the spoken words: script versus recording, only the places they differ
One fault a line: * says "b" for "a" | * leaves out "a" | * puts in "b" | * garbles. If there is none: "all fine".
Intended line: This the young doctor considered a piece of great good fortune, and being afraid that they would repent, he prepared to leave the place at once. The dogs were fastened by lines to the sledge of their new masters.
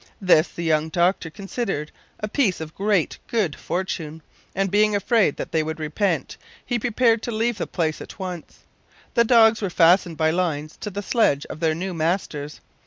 all fine